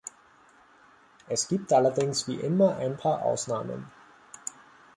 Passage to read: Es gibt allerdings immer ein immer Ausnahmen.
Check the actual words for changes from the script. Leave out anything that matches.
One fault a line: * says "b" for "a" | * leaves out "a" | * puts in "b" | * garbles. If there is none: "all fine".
* puts in "wie"
* says "paar" for "immer"